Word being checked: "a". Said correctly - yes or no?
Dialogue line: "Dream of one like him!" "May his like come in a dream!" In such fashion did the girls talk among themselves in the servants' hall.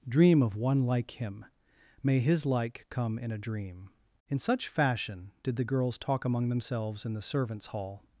yes